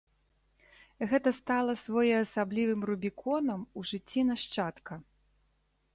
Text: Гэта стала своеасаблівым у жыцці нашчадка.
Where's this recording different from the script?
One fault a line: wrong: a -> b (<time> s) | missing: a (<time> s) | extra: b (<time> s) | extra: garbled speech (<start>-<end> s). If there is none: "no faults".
extra: рубіконам (2.9 s)